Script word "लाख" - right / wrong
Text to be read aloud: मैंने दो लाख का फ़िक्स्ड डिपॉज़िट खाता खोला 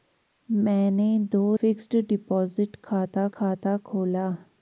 wrong